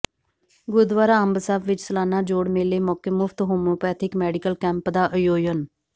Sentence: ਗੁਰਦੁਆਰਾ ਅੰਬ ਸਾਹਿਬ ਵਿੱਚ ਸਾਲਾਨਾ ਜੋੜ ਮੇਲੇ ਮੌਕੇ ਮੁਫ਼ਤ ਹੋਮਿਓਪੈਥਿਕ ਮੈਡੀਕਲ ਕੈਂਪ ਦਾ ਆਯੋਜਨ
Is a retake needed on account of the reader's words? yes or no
no